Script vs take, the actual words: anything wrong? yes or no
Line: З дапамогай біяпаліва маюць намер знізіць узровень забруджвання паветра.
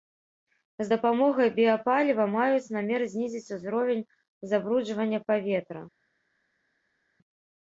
no